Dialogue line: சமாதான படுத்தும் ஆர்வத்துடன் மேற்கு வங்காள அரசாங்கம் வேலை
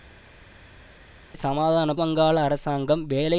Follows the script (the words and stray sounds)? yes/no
no